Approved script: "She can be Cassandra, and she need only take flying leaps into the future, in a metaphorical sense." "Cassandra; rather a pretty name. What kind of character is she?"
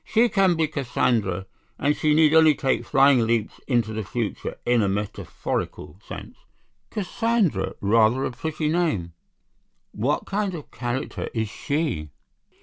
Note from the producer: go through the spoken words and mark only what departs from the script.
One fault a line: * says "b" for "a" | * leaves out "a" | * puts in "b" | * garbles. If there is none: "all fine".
all fine